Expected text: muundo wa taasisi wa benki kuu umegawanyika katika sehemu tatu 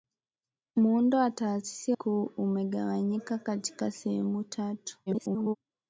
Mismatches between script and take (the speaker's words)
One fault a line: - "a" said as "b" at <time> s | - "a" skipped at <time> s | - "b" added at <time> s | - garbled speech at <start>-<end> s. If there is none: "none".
- "wa benki" skipped at 1.9 s
- garbled speech at 5.1-5.6 s